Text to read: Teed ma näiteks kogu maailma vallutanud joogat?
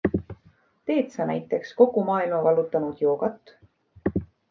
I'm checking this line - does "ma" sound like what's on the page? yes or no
no